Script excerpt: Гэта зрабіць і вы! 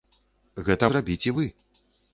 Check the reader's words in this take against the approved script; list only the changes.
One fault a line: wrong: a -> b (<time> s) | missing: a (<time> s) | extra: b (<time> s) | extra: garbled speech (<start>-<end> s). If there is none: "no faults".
no faults